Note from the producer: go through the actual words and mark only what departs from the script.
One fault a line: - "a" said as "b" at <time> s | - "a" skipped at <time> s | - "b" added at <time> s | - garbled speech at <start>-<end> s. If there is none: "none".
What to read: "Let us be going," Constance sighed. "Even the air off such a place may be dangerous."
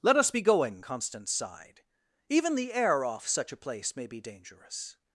none